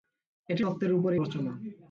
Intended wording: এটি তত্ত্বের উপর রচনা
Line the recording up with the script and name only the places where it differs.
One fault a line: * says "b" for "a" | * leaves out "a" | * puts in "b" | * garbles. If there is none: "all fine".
all fine